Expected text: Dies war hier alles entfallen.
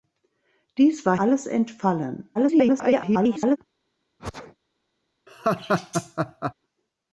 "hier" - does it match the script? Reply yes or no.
no